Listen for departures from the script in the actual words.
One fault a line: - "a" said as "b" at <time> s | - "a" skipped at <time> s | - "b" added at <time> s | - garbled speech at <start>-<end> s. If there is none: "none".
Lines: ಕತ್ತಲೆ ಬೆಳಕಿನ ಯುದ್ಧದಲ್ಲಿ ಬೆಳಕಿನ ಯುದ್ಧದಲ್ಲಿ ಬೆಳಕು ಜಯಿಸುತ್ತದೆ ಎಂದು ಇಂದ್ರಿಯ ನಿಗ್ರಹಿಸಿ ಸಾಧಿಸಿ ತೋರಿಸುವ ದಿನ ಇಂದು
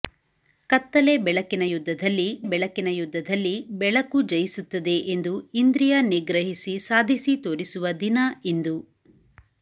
none